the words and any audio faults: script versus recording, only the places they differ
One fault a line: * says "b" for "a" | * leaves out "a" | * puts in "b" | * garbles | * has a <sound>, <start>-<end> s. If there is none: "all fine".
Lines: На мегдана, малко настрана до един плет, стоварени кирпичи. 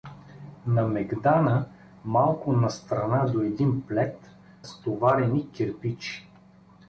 all fine